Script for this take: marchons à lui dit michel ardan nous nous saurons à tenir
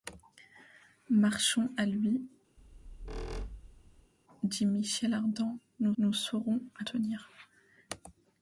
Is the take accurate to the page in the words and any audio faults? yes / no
no